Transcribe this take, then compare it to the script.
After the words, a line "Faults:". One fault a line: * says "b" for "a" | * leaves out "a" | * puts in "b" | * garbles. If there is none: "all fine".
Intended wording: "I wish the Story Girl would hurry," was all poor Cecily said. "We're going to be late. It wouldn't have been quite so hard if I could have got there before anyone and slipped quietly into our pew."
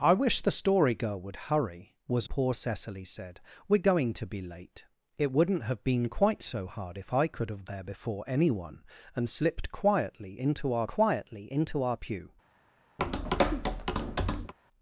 "I wish the Story Girl would hurry," was poor Cecily said. "We're going to be late. It wouldn't have been quite so hard if I could have there before anyone and slipped quietly into our quietly into our pew."
Faults:
* leaves out "all"
* leaves out "got"
* puts in "quietly into our"